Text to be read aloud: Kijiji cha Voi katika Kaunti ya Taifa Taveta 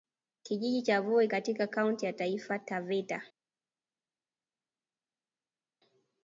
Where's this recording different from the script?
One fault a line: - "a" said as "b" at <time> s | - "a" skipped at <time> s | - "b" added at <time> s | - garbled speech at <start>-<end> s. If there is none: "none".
none